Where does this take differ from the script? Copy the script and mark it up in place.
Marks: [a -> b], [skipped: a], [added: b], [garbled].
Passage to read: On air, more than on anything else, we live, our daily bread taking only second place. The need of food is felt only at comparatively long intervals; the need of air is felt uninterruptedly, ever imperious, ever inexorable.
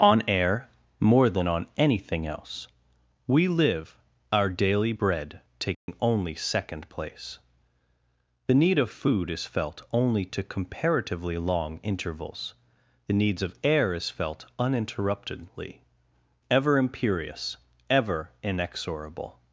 On air, more than on anything else, we live, our daily bread taking only second place. The need of food is felt only [at -> to] comparatively long intervals; the [need -> needs] of air is felt uninterruptedly, ever imperious, ever inexorable.